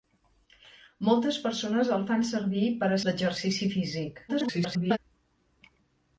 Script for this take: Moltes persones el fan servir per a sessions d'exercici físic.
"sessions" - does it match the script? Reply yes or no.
no